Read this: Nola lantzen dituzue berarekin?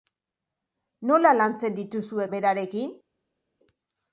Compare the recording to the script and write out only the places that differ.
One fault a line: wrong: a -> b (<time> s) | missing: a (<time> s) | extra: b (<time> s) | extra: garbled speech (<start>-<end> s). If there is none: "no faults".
no faults